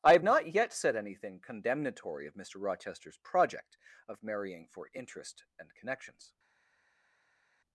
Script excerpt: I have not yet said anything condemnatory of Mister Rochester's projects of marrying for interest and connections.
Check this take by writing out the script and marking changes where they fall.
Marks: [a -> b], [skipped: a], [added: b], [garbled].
I have not yet said anything condemnatory of Mister Rochester's [projects -> project] of marrying for interest and connections.